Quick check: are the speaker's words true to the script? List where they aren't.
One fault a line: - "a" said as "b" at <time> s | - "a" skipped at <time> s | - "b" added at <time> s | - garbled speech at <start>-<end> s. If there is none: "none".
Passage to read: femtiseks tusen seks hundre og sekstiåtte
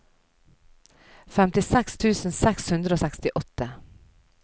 none